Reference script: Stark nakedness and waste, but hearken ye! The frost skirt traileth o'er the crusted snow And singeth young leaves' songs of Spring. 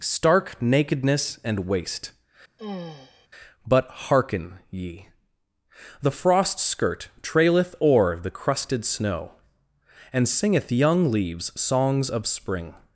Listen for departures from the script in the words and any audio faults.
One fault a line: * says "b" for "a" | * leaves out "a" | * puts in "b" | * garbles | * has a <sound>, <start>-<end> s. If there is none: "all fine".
* has a sigh, 2.6-3.3 s